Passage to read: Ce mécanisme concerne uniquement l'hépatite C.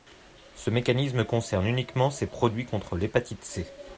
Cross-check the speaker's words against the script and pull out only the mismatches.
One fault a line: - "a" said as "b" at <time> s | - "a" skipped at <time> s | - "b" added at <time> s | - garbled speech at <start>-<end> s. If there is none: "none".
- "ces produits contre" added at 2.1 s